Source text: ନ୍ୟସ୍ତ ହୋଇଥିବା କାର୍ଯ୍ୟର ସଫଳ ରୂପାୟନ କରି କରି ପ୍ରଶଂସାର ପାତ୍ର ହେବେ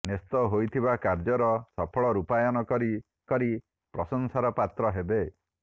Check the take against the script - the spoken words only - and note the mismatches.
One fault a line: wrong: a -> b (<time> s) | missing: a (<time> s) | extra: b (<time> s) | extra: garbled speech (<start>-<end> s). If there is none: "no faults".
no faults